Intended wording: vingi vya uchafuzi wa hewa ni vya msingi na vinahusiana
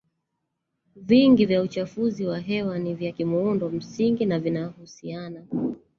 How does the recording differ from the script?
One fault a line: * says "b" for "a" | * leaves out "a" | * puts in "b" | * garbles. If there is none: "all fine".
* puts in "kimuundo"